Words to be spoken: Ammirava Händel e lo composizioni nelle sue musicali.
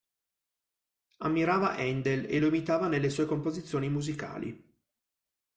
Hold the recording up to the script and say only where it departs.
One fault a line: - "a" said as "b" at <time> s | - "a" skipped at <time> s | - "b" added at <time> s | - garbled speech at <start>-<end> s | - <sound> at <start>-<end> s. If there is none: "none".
- "composizioni" said as "imitava" at 2.5 s
- "composizioni" added at 3.3 s